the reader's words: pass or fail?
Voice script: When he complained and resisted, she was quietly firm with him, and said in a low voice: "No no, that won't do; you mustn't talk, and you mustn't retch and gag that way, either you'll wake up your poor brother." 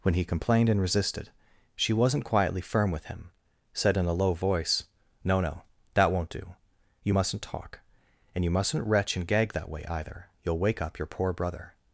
fail